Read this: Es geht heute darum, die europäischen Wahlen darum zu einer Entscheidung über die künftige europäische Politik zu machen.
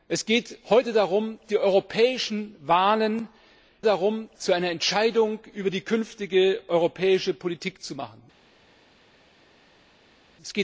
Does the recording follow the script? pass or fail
pass